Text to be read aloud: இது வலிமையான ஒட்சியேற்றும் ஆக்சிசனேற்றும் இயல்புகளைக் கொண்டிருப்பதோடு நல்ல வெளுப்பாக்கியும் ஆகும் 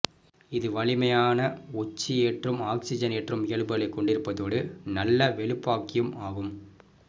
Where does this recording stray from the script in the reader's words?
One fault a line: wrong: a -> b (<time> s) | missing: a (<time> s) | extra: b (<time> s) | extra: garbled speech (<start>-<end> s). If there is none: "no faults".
no faults